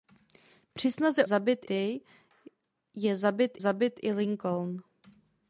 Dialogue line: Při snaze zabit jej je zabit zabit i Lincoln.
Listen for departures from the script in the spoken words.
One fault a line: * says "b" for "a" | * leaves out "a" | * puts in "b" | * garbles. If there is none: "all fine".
all fine